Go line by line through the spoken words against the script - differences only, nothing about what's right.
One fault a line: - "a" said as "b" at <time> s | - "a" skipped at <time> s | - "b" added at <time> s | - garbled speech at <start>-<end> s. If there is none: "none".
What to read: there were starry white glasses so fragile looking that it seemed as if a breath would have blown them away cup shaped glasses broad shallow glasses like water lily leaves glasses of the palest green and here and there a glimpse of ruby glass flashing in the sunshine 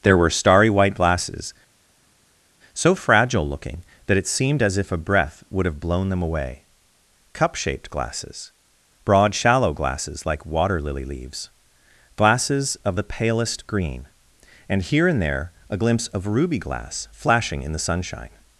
none